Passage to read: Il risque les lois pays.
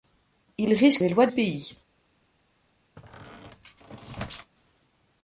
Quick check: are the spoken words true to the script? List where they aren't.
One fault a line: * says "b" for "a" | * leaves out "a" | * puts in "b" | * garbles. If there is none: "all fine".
all fine